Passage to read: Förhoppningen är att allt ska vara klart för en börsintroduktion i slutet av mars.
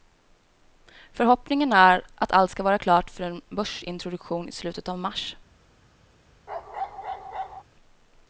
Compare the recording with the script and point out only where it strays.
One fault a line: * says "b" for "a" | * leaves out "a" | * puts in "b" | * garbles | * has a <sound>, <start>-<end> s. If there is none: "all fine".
* has a bark, 6.5-7.6 s